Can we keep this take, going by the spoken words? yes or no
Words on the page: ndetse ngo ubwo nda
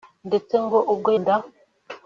yes